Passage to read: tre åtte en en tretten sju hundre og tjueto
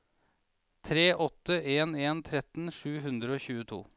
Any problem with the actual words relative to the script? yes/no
no